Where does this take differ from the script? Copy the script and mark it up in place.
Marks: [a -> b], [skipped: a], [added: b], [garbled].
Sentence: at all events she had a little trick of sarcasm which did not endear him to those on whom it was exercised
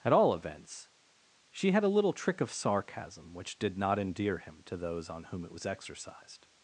at all events she had a little trick of sarcasm which did not endear him to those on whom it was exercised